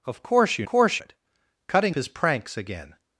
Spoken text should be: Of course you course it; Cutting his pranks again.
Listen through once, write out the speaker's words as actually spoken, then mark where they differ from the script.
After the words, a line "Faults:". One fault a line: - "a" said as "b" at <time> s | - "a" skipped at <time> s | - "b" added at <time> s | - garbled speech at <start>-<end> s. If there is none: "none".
Of course you course it; Cutting his pranks again.
Faults:
none